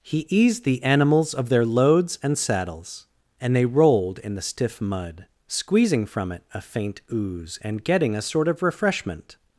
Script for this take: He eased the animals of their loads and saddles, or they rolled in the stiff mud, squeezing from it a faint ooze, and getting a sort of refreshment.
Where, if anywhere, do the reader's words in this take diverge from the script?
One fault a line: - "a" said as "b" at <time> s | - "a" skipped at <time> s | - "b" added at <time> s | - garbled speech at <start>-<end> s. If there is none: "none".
- "or" said as "and" at 3.4 s